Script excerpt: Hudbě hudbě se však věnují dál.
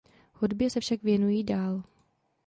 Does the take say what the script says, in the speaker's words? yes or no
no